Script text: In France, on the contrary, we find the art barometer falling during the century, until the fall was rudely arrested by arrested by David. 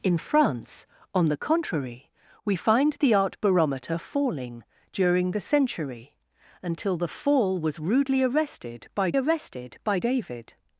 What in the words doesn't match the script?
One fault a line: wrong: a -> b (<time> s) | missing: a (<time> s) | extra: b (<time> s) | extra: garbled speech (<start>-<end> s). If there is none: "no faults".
no faults